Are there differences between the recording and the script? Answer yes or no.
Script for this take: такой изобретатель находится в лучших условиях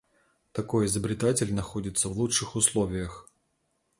no